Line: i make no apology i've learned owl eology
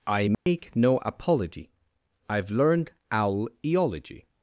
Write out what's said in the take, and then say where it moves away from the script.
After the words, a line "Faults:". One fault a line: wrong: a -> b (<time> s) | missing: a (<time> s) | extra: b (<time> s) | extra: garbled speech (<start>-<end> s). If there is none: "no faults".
i make no apology i've learned owl eology
Faults:
no faults